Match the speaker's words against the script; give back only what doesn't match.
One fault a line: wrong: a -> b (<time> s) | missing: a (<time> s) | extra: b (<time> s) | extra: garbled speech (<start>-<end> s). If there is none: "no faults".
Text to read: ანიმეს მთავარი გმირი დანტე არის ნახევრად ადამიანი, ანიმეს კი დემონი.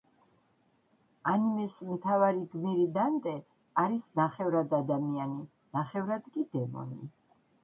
wrong: ანიმეს -> ნახევრად (5.8 s)